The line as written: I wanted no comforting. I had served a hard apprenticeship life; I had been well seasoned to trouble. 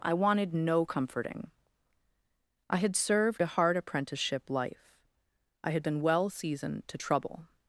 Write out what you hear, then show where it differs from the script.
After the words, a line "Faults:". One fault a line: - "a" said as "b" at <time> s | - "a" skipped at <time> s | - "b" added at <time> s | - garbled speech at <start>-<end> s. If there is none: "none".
I wanted no comforting. I had served a hard apprenticeship life; I had been well seasoned to trouble.
Faults:
none